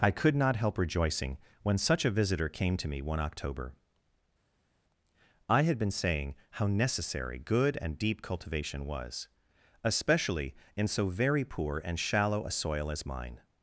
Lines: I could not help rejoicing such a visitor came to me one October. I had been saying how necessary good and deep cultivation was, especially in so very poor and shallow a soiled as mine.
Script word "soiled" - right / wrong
wrong